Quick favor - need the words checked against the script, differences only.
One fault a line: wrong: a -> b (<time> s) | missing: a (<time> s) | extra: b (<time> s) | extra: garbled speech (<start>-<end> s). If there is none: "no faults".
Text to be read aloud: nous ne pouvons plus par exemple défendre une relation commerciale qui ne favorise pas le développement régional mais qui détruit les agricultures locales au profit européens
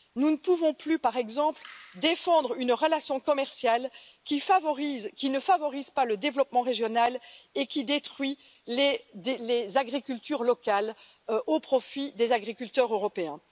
wrong: mais -> et (7.6 s)
extra: des agriculteurs (12.1 s)